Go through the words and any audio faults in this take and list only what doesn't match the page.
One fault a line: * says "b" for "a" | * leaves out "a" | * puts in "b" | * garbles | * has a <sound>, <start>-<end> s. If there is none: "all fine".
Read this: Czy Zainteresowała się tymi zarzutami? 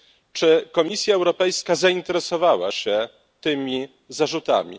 * puts in "Komisja Europejska"